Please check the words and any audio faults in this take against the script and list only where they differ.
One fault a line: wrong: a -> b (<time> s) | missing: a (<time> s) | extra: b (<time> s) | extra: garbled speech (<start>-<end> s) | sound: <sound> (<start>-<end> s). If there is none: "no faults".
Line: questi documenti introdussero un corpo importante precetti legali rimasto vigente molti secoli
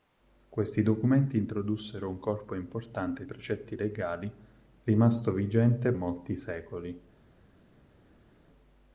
no faults